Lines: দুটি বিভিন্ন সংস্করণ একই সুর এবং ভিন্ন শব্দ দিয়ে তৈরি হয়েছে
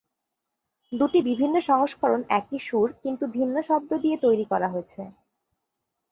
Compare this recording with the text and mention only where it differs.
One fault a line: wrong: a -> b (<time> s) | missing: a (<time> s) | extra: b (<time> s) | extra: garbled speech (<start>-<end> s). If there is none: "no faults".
wrong: এবং -> কিন্তু (3.0 s)
extra: করা (4.4 s)